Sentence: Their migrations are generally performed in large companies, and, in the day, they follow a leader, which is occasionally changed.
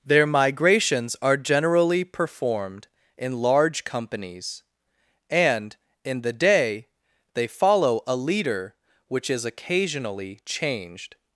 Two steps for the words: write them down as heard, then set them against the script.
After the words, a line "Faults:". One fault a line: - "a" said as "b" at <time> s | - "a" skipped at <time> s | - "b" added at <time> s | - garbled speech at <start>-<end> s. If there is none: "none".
Their migrations are generally performed in large companies, and, in the day, they follow a leader, which is occasionally changed.
Faults:
none